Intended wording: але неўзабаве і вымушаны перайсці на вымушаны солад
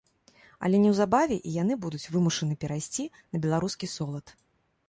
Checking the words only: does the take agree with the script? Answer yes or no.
no